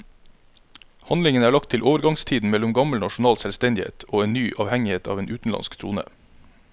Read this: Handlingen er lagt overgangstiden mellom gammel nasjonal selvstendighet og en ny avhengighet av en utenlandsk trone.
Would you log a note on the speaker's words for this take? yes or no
yes